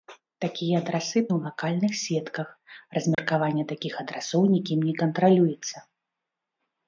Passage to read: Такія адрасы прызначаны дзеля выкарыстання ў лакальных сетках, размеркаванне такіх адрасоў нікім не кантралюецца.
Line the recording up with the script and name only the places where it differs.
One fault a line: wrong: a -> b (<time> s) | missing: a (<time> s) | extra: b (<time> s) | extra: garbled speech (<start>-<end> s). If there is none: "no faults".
missing: прызначаны дзеля выкарыстання (1.2 s)